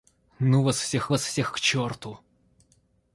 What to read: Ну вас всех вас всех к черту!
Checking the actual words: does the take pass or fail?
pass